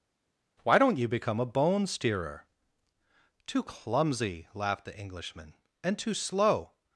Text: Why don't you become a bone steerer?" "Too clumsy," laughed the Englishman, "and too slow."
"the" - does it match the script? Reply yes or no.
yes